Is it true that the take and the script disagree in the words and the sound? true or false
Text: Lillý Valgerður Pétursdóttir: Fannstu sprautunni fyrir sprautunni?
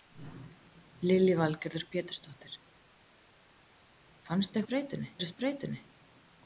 false